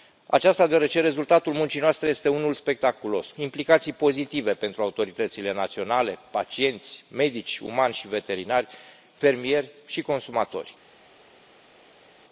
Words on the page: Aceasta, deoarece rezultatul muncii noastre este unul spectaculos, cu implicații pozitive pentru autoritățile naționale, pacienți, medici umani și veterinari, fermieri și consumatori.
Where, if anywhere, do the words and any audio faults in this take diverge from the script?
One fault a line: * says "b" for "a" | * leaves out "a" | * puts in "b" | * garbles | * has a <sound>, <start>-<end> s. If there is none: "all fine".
* leaves out "cu"